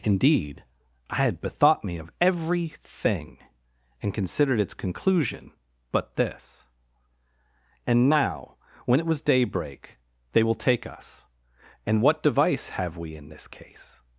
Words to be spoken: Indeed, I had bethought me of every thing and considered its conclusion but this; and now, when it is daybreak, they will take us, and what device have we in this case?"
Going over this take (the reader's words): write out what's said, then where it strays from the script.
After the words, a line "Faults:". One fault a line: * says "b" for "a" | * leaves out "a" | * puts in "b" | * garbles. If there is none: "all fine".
Indeed, I had bethought me of every thing and considered its conclusion but this; and now, when it was daybreak, they will take us, and what device have we in this case?"
Faults:
* says "was" for "is"